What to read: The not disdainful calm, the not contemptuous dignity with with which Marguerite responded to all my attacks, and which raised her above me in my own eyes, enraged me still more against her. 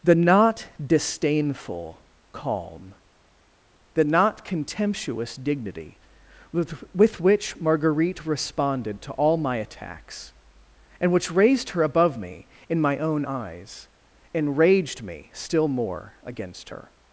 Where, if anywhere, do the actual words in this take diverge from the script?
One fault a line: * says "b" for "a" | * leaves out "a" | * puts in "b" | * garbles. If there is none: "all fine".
all fine